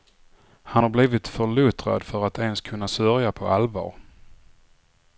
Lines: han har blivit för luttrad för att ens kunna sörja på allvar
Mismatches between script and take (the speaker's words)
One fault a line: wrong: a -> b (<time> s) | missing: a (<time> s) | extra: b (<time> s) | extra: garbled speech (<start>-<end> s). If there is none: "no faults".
no faults